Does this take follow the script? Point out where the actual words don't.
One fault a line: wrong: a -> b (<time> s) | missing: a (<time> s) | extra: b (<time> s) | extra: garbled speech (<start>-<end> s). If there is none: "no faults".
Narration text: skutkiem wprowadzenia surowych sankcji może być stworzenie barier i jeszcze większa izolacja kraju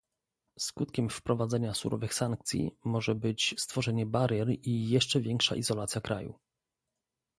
no faults